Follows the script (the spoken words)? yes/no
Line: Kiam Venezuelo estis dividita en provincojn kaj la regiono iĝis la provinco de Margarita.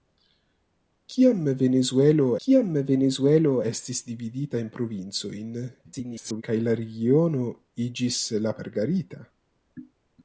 no